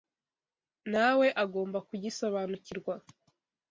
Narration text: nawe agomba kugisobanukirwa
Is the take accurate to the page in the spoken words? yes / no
yes